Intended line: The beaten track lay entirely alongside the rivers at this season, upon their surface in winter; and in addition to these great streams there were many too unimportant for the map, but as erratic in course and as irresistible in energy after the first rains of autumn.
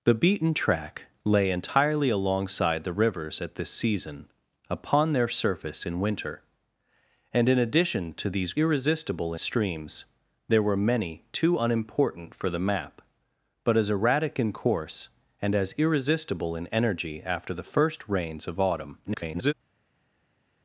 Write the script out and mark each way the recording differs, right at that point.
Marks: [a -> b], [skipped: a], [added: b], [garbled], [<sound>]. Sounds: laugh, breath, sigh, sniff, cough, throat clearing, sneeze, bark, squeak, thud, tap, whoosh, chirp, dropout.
The beaten track lay entirely alongside the rivers at this season, upon their surface in winter; and in addition to these [great -> irresistible] streams there were many too unimportant for the map, but as erratic in course and as irresistible in energy after the first rains of autumn. [garbled]